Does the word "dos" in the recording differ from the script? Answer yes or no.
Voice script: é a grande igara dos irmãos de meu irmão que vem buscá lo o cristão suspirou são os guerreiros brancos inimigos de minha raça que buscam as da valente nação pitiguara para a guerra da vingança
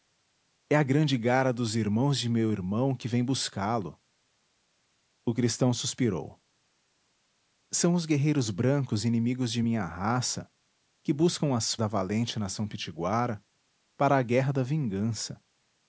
no